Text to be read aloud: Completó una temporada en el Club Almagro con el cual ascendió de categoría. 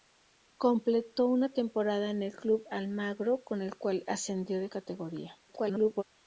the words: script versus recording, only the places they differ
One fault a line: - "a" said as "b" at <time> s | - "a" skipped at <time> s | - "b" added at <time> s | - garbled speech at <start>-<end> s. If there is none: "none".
- garbled speech at 5.5-6.0 s